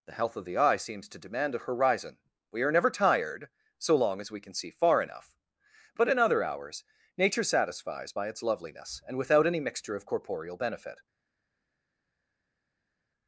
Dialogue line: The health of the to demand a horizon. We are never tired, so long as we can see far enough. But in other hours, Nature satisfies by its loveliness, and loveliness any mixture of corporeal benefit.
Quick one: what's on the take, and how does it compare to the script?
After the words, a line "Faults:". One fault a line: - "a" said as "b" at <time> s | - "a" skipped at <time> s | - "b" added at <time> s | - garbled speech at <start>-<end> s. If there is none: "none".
The health of the eye seems to demand a horizon. We are never tired, so long as we can see far enough. But in other hours, Nature satisfies by its loveliness, and without any mixture of corporeal benefit.
Faults:
- "eye seems" added at 0.6 s
- "loveliness" said as "without" at 9.2 s